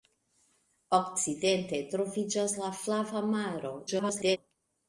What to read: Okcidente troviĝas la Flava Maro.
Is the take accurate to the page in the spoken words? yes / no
no